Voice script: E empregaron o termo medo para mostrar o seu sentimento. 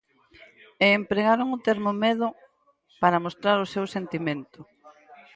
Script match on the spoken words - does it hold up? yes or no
yes